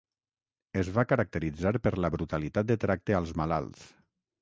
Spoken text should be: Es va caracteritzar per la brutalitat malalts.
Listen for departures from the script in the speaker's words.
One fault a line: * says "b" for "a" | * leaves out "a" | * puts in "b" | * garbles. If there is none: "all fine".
* puts in "de tracte als"